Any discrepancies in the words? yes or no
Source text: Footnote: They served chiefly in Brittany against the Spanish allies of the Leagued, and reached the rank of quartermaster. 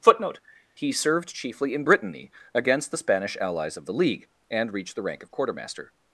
yes